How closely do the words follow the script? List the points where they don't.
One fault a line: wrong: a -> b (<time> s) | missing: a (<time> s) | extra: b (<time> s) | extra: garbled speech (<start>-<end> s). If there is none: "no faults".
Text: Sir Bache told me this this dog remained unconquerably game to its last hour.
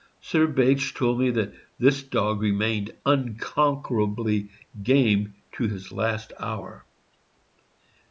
wrong: this -> that (1.3 s)
wrong: its -> his (5.6 s)